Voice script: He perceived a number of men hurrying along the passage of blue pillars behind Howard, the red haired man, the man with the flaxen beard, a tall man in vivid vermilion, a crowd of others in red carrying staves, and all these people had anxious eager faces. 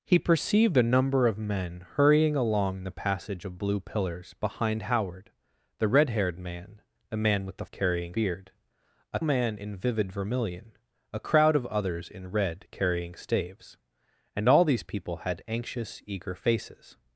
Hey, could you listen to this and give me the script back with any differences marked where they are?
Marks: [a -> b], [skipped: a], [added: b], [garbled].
He perceived a number of men hurrying along the passage of blue pillars behind Howard, the red haired man, the man with the [flaxen -> carrying] beard, a [skipped: tall] man in vivid vermilion, a crowd of others in red carrying staves, and all these people had anxious eager faces.